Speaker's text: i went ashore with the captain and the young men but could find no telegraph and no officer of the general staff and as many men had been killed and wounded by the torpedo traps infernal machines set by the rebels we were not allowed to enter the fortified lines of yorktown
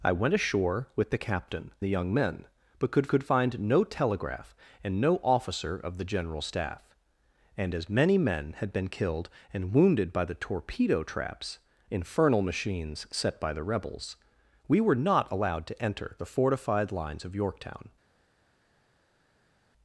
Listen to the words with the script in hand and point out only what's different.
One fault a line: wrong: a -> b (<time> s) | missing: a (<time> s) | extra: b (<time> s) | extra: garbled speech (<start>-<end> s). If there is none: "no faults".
missing: and (1.7 s)
extra: could (3.1 s)